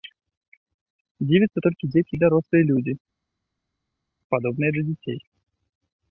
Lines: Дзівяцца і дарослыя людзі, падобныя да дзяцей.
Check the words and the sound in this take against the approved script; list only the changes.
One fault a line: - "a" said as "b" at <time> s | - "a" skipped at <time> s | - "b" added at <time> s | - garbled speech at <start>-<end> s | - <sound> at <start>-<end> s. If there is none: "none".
- "толькі дзеці" added at 1.7 s